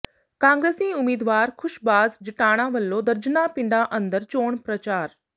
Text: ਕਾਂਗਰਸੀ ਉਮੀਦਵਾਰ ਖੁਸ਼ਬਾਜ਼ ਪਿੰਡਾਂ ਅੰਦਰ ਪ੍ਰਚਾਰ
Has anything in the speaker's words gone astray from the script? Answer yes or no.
yes